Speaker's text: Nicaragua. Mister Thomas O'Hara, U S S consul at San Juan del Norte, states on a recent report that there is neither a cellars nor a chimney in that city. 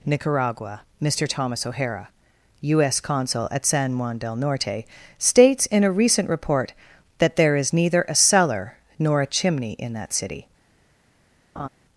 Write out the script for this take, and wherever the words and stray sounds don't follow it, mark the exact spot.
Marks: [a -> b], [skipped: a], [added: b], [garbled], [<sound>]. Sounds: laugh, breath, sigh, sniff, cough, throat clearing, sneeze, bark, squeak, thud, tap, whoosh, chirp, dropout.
Nicaragua. Mister Thomas O'Hara, U S [skipped: S] consul at San Juan del Norte, states [on -> in] a recent report that there is neither a [cellars -> cellar] nor a chimney in that city. [laugh]